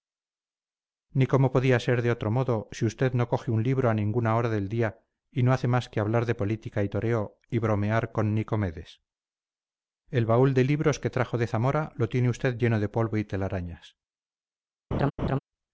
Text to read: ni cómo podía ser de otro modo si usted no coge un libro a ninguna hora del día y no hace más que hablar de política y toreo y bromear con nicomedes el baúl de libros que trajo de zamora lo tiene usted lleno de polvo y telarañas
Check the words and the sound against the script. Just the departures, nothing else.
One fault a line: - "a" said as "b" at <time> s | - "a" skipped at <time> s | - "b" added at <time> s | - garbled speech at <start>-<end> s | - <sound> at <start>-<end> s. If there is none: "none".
- laugh at 14.9-15.4 s